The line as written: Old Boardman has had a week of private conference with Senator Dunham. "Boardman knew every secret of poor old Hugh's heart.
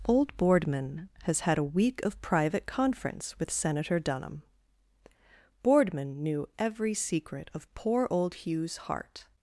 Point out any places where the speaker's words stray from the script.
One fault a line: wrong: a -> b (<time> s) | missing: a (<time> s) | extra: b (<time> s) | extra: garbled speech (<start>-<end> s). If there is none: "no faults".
no faults